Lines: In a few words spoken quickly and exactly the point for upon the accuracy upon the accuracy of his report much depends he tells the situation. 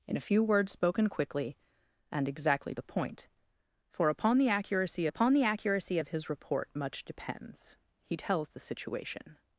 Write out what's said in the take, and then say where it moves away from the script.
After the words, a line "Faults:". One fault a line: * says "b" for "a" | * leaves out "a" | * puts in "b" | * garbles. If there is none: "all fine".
In a few words spoken quickly and exactly the point for upon the accuracy upon the accuracy of his report much depends he tells the situation.
Faults:
all fine